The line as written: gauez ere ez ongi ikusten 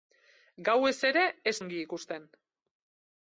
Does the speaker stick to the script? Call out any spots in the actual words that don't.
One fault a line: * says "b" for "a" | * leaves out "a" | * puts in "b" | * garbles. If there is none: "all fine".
all fine